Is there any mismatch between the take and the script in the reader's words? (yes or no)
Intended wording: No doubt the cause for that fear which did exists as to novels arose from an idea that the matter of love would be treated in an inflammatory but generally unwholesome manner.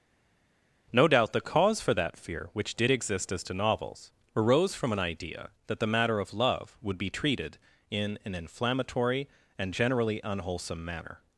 yes